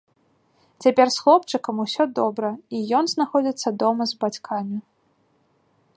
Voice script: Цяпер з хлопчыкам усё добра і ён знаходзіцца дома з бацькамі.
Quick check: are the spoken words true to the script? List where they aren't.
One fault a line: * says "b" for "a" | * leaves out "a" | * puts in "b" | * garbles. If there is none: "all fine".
all fine